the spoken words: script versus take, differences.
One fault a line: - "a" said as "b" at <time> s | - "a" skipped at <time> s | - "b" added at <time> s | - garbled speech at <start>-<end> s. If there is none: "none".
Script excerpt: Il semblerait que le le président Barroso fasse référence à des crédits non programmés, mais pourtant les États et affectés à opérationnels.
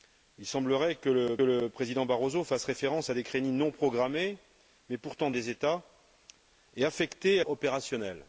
none